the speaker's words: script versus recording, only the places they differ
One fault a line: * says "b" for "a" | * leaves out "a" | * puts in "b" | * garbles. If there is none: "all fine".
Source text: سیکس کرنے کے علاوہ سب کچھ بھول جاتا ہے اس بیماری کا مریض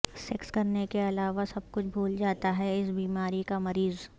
all fine